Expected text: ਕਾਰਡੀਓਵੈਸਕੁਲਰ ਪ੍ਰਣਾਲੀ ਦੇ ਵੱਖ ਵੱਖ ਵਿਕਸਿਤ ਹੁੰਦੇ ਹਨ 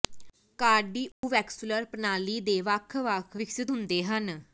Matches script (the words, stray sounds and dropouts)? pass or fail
fail